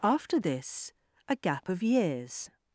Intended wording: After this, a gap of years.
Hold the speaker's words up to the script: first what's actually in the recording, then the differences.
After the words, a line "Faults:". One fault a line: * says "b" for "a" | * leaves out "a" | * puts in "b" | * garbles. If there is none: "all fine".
After this, a gap of years.
Faults:
all fine